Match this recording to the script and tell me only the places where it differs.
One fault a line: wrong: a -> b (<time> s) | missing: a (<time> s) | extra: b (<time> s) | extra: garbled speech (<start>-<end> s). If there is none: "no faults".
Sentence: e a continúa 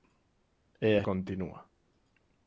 no faults